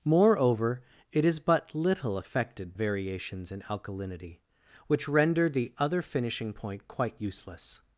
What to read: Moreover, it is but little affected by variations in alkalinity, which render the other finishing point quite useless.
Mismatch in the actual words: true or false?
true